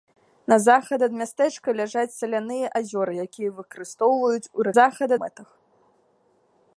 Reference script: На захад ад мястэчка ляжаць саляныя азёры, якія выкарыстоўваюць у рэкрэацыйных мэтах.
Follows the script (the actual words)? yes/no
no